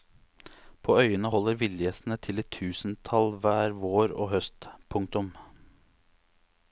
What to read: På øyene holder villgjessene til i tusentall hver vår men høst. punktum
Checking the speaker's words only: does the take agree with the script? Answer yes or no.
no